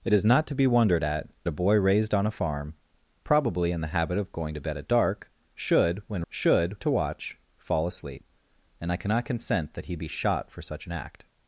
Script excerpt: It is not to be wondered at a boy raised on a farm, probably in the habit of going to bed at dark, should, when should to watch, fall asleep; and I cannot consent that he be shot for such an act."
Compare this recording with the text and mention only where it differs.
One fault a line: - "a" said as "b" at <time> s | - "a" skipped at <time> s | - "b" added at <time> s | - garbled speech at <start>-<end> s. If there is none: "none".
none